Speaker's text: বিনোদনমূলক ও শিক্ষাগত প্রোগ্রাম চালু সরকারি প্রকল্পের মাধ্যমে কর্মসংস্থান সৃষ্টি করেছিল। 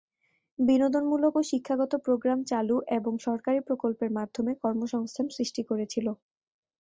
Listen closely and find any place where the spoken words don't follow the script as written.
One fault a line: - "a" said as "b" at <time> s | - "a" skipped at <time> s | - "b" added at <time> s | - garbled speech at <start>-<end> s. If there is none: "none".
- "এবং" added at 3.0 s